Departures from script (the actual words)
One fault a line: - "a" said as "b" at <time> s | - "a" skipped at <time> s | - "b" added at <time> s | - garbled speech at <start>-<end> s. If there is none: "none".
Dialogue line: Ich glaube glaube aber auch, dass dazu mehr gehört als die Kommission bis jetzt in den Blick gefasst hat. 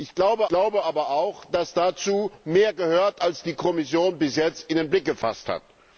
none